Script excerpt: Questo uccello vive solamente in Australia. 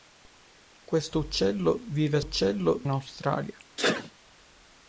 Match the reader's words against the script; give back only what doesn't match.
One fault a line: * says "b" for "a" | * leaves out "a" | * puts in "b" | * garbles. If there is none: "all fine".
* says "uccello" for "solamente"